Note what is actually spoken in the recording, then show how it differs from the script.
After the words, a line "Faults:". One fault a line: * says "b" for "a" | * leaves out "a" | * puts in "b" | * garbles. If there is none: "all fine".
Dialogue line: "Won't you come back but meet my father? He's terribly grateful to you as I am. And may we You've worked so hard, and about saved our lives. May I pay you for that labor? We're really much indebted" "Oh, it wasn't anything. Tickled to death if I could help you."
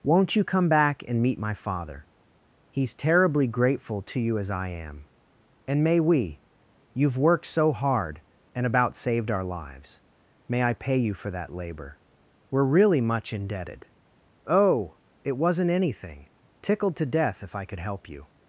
"Won't you come back and meet my father? He's terribly grateful to you as I am. And may we You've worked so hard, and about saved our lives. May I pay you for that labor? We're really much indebted" "Oh, it wasn't anything. Tickled to death if I could help you."
Faults:
* says "and" for "but"